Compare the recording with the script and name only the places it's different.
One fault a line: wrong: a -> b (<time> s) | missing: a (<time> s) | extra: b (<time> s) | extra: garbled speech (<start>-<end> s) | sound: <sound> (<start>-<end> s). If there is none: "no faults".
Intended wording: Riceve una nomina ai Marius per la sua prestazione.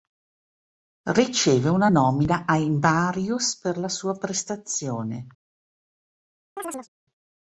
sound: chirp (6.6-6.9 s)